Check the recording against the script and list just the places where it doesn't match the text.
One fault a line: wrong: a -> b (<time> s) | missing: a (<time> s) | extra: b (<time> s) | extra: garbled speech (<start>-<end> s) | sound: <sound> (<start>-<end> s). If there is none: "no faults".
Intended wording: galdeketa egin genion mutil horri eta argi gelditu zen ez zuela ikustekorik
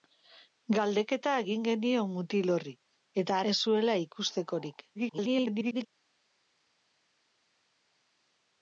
missing: argi gelditu zen (3.4 s)
extra: garbled speech (4.9-5.9 s)